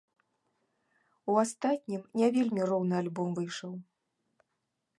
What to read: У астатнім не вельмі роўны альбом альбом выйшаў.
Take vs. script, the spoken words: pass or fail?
fail